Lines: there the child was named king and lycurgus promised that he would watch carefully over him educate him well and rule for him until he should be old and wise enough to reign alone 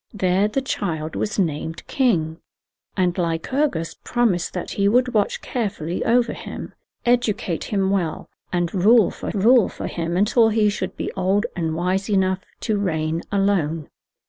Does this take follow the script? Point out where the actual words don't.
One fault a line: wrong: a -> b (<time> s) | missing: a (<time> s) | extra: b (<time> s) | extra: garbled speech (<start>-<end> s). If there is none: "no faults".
extra: rule for (9.3 s)